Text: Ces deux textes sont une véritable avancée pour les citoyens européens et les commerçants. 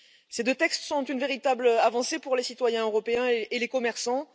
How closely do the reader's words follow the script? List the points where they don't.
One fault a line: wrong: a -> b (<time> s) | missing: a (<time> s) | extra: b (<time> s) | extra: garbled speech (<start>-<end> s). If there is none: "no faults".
no faults